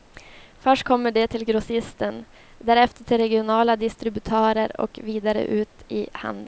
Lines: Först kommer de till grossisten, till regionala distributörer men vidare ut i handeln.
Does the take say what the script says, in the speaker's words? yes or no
no